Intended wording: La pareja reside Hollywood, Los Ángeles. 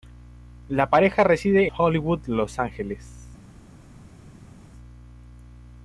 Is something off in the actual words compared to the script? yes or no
no